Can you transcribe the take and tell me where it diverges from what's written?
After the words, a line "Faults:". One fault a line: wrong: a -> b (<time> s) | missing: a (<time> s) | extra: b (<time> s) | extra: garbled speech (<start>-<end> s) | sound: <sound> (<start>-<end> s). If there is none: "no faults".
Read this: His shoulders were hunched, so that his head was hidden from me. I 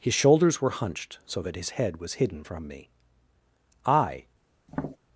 His shoulders were hunched, so that his head was hidden from me. I
Faults:
sound: tap (4.7-5.0 s)